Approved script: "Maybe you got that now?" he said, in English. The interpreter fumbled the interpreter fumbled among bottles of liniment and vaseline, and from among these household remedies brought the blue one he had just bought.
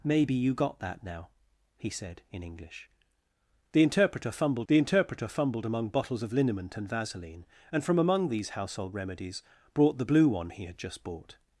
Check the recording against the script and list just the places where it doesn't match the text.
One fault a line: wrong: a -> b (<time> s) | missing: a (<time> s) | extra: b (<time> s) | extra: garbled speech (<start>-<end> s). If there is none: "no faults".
no faults